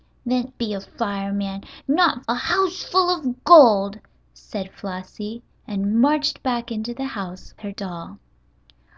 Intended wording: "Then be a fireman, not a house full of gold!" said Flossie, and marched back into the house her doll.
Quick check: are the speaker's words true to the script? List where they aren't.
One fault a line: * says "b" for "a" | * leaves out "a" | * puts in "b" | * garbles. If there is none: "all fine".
all fine